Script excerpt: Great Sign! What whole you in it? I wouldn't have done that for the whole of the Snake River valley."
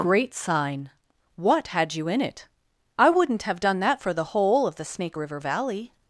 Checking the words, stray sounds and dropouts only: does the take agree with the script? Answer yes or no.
no